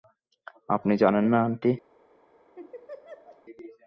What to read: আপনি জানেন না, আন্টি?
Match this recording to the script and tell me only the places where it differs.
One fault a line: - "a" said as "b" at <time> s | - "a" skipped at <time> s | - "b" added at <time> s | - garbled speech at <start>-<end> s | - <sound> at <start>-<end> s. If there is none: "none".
- laugh at 2.5-3.4 s